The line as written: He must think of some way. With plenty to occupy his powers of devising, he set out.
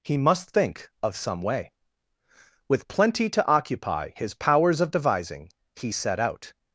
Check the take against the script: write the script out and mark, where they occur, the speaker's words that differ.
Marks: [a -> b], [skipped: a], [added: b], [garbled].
He must think of some way. With plenty to occupy his powers of devising, he set out.